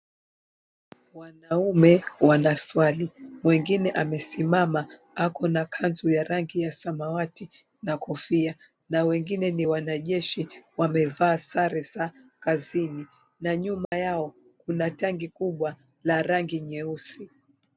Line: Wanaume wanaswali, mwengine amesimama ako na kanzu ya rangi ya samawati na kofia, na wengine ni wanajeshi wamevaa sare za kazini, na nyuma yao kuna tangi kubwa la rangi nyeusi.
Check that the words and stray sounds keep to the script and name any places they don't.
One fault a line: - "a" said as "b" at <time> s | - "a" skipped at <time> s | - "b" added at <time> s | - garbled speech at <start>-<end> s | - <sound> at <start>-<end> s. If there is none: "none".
- dropout at 13.8-13.9 s